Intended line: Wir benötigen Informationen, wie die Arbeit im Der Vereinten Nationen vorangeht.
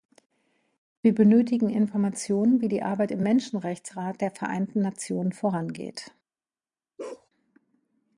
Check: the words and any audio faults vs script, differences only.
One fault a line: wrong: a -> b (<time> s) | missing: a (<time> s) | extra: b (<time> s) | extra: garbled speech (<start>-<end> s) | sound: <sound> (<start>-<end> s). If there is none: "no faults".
extra: Menschenrechtsrat (3.2 s)
sound: bark (7.0-7.3 s)